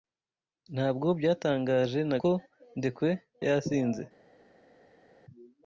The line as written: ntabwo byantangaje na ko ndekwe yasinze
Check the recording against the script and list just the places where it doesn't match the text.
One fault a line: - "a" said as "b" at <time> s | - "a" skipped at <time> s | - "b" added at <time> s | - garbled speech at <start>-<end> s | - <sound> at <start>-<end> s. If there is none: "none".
none